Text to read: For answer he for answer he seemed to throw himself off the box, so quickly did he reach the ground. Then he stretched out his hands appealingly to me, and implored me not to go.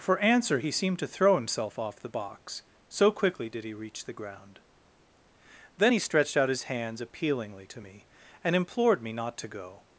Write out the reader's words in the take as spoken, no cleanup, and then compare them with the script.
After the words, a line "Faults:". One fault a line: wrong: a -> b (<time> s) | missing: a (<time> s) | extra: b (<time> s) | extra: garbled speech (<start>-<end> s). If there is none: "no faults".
For answer he seemed to throw himself off the box, so quickly did he reach the ground. Then he stretched out his hands appealingly to me, and implored me not to go.
Faults:
missing: for answer he (0.7 s)